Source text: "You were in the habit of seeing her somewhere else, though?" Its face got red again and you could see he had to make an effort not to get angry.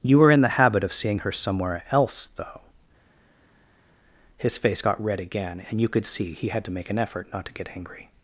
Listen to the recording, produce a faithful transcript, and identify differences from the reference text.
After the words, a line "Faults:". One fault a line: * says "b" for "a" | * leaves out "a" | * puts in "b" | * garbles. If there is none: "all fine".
"You were in the habit of seeing her somewhere else, though?" His face got red again and you could see he had to make an effort not to get angry.
Faults:
* says "His" for "Its"